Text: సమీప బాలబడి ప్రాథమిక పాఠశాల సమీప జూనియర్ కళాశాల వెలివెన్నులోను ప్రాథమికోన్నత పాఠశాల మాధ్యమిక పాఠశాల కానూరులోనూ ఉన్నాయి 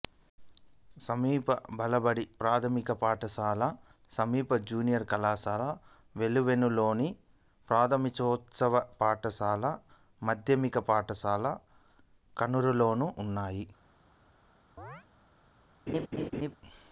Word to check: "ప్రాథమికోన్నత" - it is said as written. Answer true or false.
true